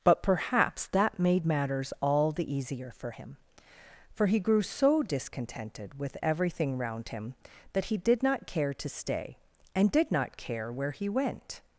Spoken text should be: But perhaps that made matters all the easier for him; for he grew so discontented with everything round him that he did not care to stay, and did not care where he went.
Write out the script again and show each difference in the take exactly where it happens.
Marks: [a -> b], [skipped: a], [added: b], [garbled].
But perhaps that made matters all the easier for him; for he grew so discontented with everything round him that he did not care to stay, and did not care where he went.